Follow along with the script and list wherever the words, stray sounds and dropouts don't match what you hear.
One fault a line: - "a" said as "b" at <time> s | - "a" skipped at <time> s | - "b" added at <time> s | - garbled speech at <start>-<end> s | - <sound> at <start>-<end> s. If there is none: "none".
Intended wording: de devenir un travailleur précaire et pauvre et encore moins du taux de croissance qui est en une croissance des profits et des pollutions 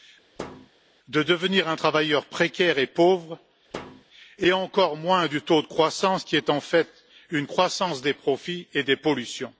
- thud at 0.4-0.7 s
- thud at 3.7-4.0 s
- "fait" added at 6.6 s